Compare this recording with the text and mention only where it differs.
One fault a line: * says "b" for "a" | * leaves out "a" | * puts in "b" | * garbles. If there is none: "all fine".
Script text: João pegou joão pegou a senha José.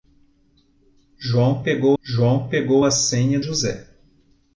all fine